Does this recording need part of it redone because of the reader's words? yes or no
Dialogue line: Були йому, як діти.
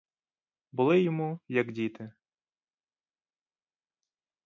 no